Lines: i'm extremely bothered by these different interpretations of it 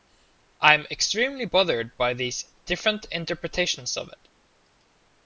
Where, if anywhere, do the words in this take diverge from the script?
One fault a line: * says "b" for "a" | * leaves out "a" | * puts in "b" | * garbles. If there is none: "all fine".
all fine